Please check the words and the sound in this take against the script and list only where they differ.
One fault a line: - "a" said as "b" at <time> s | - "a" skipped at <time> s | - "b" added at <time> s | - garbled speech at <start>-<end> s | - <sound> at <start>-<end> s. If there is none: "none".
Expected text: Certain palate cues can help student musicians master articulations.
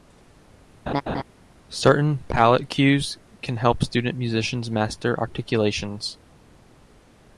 - laugh at 0.9-1.2 s